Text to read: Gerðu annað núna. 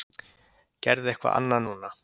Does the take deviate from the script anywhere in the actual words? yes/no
yes